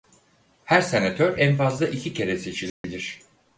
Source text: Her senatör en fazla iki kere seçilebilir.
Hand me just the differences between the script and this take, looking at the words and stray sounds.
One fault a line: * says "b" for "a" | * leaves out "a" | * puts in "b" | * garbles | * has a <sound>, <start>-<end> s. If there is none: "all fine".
* has a dropout, 2.7-2.8 s